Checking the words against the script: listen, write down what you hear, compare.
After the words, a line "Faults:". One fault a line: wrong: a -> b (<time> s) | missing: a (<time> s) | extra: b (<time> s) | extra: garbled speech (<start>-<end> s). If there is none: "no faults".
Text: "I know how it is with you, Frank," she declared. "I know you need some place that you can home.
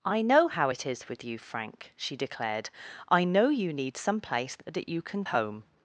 "I know how it is with you, Frank," she declared. "I know you need some place that you can home.
Faults:
no faults